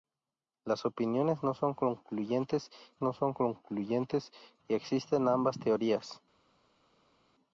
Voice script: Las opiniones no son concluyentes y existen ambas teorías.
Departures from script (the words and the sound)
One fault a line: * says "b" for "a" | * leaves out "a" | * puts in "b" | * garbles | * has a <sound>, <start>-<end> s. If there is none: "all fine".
* puts in "no son concluyentes"